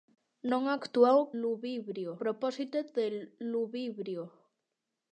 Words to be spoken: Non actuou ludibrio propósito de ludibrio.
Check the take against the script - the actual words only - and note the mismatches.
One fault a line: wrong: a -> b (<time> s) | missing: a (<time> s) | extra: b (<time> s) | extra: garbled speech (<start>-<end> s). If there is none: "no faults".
no faults